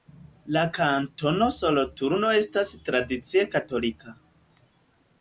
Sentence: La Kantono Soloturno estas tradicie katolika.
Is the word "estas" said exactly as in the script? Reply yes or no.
yes